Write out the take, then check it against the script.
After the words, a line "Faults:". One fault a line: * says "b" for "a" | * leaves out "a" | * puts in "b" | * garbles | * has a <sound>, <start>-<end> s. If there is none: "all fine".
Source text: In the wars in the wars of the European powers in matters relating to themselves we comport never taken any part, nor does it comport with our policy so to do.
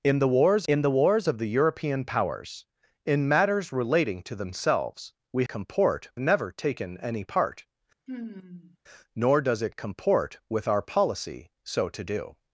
In the wars in the wars of the European powers in matters relating to themselves we comport never taken any part, nor does it comport with our policy so to do.
Faults:
* has a sigh, 8.1-8.8 s